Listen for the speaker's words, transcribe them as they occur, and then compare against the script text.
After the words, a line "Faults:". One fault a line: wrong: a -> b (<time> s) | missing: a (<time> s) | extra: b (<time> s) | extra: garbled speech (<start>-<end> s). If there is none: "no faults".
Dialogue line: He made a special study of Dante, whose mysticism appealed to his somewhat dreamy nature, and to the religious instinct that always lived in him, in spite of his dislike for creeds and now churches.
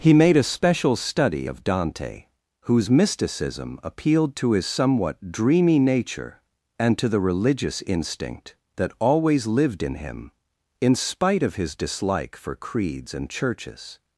He made a special study of Dante, whose mysticism appealed to his somewhat dreamy nature, and to the religious instinct that always lived in him, in spite of his dislike for creeds and churches.
Faults:
missing: now (13.3 s)